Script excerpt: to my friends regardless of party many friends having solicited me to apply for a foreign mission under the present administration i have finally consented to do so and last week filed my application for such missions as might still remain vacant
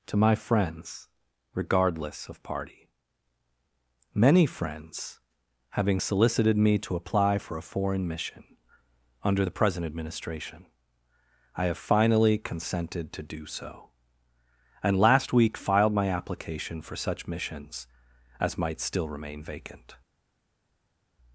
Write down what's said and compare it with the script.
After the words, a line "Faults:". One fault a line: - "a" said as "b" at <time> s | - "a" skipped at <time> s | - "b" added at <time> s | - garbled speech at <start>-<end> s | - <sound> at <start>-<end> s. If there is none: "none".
to my friends regardless of party many friends having solicited me to apply for a foreign mission under the present administration i have finally consented to do so and last week filed my application for such missions as might still remain vacant
Faults:
none